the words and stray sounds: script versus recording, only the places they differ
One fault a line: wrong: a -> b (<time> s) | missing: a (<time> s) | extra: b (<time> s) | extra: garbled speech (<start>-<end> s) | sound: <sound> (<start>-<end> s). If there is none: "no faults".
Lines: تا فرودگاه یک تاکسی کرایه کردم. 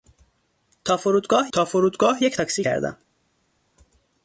extra: تا فرودگاه (1.5 s)
missing: کرایه (2.6 s)